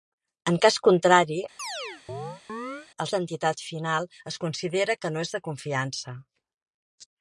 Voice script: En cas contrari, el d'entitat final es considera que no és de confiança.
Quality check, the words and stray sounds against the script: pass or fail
fail